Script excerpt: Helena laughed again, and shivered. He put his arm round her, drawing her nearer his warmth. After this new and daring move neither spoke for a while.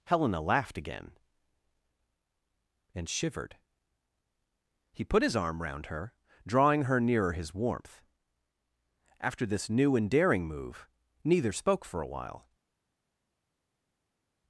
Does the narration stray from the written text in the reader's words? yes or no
no